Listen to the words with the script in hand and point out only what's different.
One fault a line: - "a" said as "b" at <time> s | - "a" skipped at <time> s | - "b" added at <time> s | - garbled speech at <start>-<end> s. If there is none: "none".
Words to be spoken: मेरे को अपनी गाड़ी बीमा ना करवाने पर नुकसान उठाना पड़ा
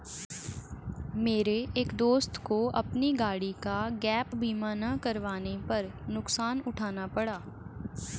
- "एक दोस्त" added at 1.8 s
- "का गैप" added at 3.6 s